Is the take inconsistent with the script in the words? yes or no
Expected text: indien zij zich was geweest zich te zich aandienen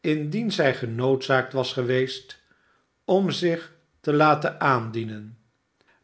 yes